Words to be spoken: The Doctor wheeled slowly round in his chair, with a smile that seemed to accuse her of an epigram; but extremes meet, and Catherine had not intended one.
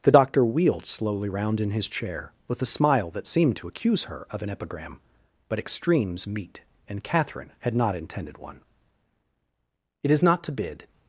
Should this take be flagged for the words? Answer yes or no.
yes